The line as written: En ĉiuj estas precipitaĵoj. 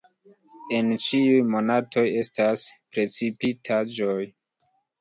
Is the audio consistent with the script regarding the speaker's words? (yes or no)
no